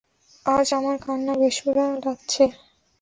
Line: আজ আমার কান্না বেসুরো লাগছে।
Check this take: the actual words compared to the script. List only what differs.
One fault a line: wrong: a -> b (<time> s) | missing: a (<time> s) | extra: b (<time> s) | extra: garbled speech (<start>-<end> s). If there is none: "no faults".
no faults